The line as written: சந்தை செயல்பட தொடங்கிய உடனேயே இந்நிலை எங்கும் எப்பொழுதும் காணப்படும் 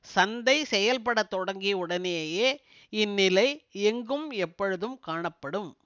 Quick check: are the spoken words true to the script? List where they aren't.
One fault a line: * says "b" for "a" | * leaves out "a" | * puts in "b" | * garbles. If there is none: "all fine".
all fine